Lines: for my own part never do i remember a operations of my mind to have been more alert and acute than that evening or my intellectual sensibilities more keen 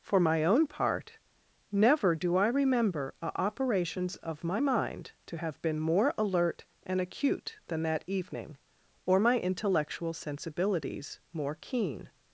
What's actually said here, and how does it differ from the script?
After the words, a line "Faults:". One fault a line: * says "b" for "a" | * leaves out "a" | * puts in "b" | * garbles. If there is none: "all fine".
for my own part never do i remember a operations of my mind to have been more alert and acute than that evening or my intellectual sensibilities more keen
Faults:
all fine